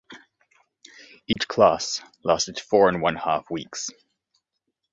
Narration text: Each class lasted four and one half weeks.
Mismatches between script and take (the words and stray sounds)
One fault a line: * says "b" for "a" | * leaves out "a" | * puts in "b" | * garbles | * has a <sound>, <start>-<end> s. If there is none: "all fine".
* has a dropout, 1.3-1.4 s